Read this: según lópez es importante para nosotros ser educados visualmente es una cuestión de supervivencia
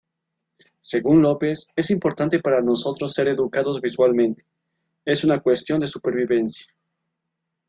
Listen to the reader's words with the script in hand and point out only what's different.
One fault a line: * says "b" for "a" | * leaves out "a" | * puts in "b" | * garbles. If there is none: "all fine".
all fine